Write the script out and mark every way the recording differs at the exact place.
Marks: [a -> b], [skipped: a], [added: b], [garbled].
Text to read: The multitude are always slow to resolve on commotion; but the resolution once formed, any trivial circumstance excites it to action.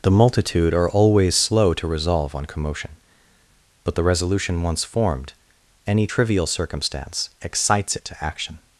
The multitude are always slow to resolve on commotion; but the resolution once formed, any trivial circumstance excites it to action.